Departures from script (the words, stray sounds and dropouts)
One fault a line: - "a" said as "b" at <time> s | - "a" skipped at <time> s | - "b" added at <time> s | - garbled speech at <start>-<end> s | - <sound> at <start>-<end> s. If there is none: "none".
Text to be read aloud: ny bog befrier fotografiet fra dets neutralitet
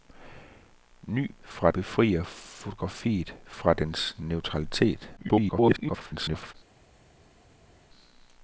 - "bog" said as "fra" at 1.4 s
- garbled speech at 5.2-6.5 s